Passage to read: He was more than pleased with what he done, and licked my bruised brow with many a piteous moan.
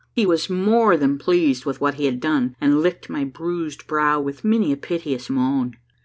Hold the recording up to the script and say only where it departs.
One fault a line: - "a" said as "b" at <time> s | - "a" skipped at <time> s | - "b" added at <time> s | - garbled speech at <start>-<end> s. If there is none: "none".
- "had" added at 2.0 s